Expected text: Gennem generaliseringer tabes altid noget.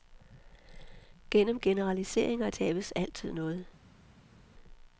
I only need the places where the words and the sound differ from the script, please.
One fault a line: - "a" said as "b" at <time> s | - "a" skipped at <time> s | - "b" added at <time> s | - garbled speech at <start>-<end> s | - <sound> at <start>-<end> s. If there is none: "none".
none